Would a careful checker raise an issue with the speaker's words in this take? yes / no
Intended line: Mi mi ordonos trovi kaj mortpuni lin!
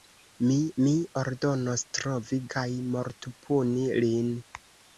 no